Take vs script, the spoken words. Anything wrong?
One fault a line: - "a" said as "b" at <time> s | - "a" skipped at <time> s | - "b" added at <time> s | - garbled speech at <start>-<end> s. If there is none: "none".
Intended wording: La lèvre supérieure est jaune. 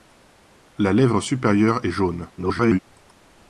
- garbled speech at 2.4-2.8 s